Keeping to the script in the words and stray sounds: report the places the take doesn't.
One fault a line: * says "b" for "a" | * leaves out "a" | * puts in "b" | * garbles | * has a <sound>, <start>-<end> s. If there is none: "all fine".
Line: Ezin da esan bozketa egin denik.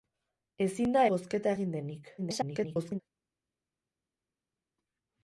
* leaves out "esan"
* garbles